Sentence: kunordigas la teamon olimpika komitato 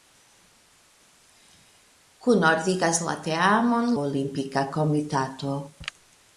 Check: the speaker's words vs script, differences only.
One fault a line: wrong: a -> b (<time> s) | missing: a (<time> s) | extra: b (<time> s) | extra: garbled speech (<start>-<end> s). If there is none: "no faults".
no faults